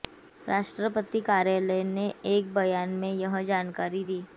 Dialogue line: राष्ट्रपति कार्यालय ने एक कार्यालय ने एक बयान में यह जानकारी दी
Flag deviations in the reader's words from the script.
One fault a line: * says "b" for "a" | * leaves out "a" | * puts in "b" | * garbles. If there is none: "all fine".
* leaves out "कार्यालय ने एक"